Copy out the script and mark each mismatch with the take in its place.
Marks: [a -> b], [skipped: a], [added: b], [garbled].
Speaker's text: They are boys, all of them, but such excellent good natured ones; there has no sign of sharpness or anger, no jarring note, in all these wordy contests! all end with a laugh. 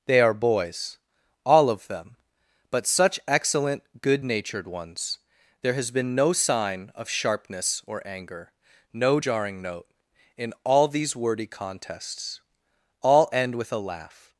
They are boys, all of them, but such excellent good natured ones; there has [added: been] no sign of sharpness or anger, no jarring note, in all these wordy contests! all end with a laugh.